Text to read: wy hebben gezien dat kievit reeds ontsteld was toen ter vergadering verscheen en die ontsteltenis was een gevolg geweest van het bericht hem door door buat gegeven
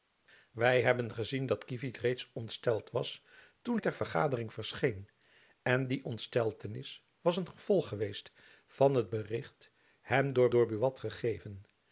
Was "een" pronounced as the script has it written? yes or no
yes